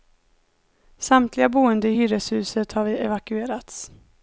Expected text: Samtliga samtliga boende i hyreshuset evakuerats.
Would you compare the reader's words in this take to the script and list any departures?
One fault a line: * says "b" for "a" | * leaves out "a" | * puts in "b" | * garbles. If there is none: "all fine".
* leaves out "samtliga"
* puts in "har"